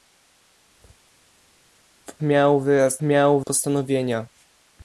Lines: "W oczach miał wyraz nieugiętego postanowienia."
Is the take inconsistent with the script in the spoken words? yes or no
yes